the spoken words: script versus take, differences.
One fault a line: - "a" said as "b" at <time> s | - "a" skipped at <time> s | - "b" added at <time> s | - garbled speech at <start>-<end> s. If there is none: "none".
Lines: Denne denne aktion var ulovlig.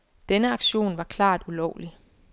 - "denne" skipped at 0.5 s
- "klart" added at 1.0 s